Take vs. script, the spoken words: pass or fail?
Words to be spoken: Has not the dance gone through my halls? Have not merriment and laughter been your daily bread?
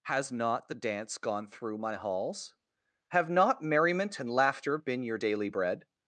pass